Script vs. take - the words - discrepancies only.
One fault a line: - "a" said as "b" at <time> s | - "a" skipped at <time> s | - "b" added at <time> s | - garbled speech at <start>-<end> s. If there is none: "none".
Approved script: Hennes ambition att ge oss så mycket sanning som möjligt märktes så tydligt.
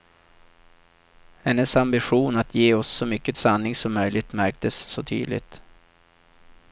none